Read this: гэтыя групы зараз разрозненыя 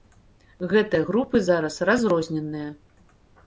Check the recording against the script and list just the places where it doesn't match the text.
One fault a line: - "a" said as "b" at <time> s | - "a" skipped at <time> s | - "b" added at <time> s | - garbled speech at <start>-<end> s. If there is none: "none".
none